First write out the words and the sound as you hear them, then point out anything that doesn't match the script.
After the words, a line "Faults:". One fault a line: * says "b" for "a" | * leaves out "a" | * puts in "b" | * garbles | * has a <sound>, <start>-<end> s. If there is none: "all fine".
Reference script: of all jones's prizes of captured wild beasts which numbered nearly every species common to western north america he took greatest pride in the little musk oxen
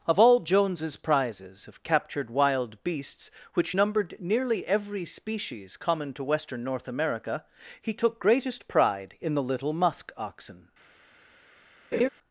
of all jones's prizes of captured wild beasts which numbered nearly every species common to western north america he took greatest pride in the little musk oxen
Faults:
* has a laugh, 11.9-12.1 s